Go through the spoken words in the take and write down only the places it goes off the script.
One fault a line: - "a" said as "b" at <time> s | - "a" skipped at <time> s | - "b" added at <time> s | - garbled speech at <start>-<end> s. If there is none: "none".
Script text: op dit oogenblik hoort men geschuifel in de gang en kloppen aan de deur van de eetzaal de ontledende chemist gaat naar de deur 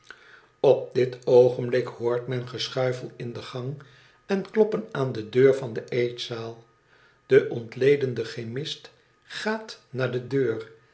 none